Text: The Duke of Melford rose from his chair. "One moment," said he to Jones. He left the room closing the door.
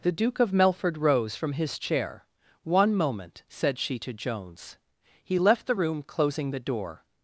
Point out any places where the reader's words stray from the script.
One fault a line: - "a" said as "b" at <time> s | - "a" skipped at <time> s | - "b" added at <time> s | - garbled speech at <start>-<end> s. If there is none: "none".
- "he" said as "she" at 3.8 s